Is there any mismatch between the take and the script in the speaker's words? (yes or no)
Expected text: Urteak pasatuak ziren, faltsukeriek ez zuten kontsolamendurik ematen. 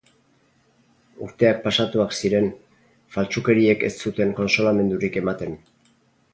no